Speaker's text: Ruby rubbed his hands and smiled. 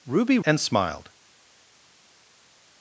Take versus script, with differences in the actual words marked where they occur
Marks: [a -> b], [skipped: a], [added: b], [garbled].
Ruby [skipped: rubbed his hands] and smiled.